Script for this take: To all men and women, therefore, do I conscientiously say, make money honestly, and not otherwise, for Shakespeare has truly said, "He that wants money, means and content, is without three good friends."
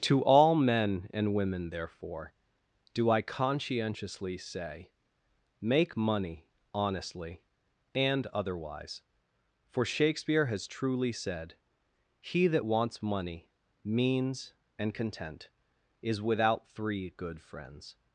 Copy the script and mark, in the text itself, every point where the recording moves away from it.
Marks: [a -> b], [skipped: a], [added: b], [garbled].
To all men and women, therefore, do I conscientiously say, make money honestly, and [skipped: not] otherwise, for Shakespeare has truly said, "He that wants money, means and content, is without three good friends."